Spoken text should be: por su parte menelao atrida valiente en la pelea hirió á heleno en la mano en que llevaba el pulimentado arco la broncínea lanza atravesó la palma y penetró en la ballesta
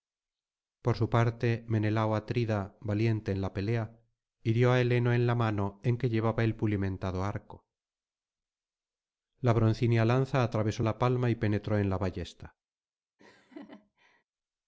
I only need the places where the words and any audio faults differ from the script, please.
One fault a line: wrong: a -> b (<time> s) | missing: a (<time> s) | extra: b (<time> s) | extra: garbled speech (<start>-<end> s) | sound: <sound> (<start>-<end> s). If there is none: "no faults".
sound: laugh (13.2-14.2 s)